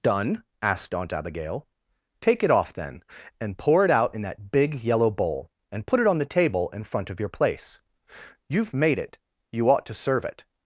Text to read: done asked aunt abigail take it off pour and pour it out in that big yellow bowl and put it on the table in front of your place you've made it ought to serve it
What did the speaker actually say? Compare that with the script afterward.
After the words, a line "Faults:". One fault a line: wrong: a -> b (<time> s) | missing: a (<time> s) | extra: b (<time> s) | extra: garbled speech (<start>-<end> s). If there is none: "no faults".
done asked aunt abigail take it off then and pour it out in that big yellow bowl and put it on the table in front of your place you've made it you ought to serve it
Faults:
wrong: pour -> then (2.7 s)
extra: you (9.5 s)